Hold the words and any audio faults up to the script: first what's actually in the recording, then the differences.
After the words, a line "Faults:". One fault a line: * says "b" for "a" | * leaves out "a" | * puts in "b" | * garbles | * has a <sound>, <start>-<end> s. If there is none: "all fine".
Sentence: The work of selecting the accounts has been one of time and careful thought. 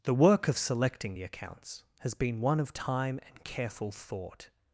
The work of selecting the accounts has been one of time and careful thought.
Faults:
all fine